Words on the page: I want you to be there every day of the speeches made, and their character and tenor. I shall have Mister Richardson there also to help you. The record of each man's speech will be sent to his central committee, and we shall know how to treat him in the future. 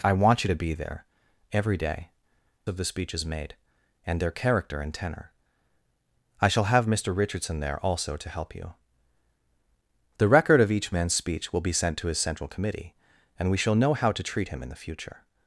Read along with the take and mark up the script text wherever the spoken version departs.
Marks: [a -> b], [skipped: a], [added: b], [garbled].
I want you to be there every day of the speeches made, and their character and tenor. I shall have Mister Richardson there also to help you. The record of each man's speech will be sent to his central committee, and we shall know how to treat him in the future.